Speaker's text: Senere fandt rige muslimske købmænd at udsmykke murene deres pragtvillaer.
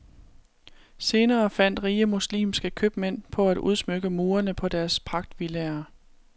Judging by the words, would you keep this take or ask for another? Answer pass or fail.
fail